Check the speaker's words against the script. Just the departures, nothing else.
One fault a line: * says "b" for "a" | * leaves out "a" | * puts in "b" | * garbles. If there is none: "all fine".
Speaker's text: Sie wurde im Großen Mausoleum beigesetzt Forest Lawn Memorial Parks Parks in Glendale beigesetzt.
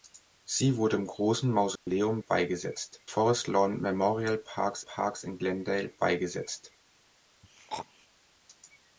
all fine